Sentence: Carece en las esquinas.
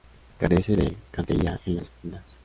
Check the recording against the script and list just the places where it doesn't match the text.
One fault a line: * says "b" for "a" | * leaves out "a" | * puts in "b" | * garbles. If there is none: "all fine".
* puts in "de cantería"